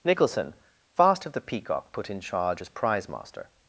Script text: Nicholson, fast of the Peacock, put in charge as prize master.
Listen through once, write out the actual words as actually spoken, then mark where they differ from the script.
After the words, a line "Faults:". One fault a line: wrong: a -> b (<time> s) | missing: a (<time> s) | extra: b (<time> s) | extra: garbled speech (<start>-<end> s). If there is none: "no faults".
Nicholson, fast of the Peacock, put in charge as prize master.
Faults:
no faults